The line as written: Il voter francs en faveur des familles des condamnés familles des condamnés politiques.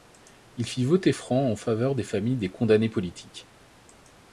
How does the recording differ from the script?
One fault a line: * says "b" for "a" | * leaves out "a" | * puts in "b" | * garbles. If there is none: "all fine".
* puts in "fit"
* leaves out "familles des condamnés"